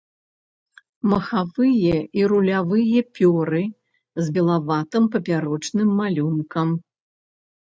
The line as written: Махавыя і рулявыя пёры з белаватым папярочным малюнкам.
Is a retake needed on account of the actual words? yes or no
no